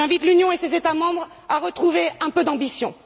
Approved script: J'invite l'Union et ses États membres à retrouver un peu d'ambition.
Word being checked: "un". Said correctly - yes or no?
yes